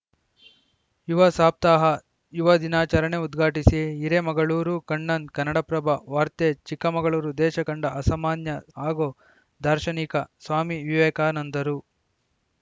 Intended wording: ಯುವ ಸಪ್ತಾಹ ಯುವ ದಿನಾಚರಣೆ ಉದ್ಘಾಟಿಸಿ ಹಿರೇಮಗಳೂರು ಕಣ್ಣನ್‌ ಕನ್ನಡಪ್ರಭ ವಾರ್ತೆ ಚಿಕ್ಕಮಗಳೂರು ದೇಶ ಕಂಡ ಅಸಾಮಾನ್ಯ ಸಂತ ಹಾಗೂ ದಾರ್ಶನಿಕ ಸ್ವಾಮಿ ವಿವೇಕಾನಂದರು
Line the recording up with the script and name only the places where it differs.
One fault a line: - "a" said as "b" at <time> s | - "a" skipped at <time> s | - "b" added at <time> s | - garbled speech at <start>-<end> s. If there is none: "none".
- "ಸಂತ" skipped at 8.5 s